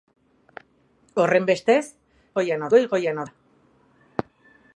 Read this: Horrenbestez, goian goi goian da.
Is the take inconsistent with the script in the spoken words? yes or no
no